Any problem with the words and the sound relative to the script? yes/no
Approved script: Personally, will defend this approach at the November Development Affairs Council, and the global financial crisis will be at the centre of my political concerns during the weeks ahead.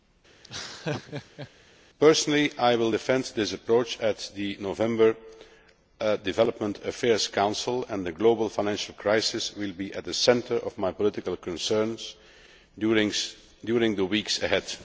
yes